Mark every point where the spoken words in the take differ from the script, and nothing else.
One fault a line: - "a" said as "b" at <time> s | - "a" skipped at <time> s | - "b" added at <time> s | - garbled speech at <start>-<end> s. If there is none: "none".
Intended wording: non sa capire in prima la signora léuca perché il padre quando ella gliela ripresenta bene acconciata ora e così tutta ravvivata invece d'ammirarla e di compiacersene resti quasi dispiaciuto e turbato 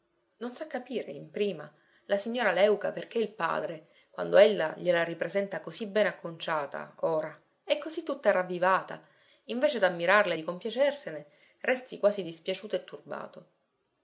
- "così" added at 5.6 s